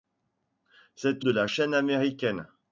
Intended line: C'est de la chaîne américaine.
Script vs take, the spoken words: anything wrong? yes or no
no